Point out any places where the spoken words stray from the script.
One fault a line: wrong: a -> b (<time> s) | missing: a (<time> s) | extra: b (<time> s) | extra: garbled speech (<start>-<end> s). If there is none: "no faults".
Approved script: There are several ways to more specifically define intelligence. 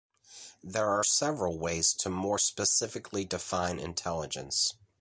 no faults